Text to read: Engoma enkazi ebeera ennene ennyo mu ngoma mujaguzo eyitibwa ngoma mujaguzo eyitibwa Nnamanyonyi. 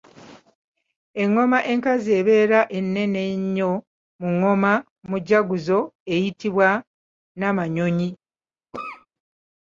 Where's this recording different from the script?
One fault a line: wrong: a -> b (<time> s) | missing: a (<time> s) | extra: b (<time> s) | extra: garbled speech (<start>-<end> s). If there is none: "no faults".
missing: ngoma mujaguzo eyitibwa (6.7 s)